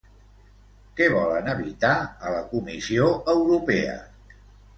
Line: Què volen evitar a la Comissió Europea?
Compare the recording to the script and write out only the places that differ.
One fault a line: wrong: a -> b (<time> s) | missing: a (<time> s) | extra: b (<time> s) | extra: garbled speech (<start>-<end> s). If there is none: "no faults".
no faults